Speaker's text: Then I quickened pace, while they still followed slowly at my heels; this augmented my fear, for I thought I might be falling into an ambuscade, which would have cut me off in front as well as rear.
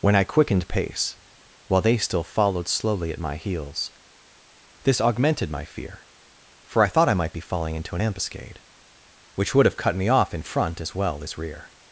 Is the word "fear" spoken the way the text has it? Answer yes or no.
yes